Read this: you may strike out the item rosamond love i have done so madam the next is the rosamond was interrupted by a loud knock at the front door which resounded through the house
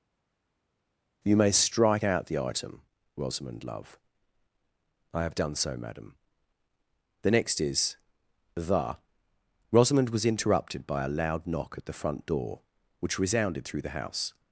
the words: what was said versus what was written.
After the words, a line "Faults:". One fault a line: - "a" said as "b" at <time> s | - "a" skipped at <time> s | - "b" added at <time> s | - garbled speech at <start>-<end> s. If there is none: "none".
you may strike out the item rosamond love i have done so madam the next is the rosamond was interrupted by a loud knock at the front door which resounded through the house
Faults:
none